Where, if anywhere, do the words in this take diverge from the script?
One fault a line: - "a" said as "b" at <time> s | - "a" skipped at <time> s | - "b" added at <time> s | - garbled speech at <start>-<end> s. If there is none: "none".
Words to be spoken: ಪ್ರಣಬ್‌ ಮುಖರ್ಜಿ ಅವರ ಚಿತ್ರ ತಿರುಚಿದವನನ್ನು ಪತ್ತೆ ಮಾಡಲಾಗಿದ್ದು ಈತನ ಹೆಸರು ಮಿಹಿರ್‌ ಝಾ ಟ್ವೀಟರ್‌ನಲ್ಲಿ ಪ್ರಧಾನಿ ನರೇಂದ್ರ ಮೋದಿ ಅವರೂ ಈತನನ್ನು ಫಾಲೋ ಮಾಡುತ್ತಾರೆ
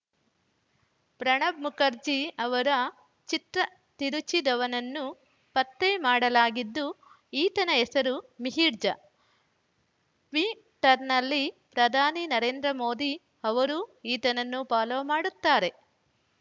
none